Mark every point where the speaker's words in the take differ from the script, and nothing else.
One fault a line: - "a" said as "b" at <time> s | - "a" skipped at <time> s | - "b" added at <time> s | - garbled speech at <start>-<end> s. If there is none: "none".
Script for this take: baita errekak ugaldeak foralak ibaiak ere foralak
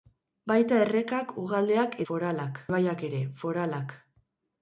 none